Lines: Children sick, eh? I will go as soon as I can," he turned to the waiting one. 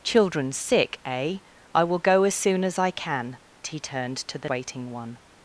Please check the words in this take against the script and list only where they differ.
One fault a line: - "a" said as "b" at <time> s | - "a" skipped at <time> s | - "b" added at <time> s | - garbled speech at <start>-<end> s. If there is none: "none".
none